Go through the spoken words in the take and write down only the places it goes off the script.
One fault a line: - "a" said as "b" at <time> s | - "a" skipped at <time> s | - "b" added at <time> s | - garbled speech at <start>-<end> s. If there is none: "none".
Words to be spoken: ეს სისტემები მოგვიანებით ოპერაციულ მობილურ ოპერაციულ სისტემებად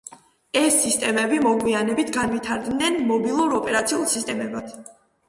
- "ოპერაციულ" said as "განვითარდნენ" at 2.2 s